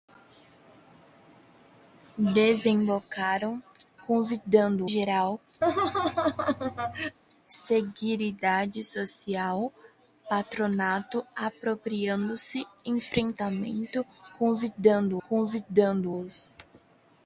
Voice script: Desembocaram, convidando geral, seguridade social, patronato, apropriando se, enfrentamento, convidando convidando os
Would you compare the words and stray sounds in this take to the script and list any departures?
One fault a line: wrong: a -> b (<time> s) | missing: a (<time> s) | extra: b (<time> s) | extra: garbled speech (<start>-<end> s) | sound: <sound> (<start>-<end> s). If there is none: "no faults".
sound: laugh (5.6-7.2 s)